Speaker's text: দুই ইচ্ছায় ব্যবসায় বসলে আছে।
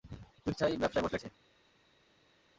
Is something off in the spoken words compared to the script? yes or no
no